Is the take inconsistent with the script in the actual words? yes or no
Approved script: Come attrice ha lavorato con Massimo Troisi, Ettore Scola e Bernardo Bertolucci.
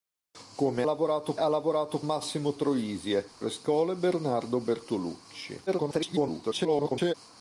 yes